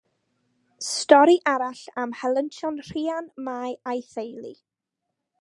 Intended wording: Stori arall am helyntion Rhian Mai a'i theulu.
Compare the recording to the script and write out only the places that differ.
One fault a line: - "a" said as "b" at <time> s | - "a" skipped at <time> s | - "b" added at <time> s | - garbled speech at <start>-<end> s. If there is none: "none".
none